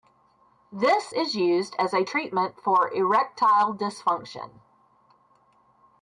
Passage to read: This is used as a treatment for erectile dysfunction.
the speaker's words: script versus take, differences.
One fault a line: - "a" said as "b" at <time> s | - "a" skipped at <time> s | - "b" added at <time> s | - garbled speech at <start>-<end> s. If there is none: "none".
none